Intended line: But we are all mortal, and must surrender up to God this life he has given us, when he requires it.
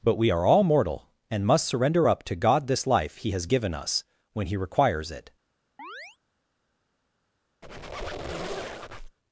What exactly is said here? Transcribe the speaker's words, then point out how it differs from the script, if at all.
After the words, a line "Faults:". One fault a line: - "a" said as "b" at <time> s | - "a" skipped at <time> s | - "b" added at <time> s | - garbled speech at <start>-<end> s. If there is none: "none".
But we are all mortal, and must surrender up to God this life he has given us, when he requires it.
Faults:
none